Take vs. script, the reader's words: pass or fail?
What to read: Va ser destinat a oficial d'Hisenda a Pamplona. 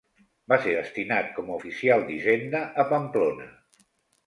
fail